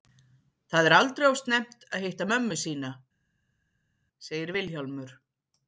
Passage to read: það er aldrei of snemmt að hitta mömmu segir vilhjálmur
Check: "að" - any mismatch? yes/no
no